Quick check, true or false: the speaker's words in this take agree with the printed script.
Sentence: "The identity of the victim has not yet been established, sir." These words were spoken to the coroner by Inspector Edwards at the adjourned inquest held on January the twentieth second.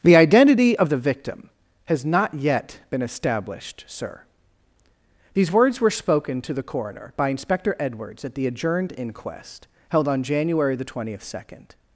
true